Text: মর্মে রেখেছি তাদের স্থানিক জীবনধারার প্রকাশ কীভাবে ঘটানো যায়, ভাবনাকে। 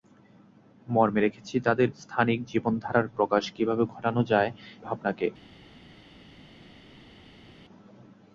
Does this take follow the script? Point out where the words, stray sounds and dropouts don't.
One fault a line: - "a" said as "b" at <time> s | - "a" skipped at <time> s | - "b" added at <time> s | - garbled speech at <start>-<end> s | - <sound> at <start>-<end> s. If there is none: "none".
none